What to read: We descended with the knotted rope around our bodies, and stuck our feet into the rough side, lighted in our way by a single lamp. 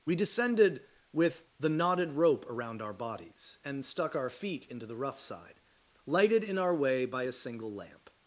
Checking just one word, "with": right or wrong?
right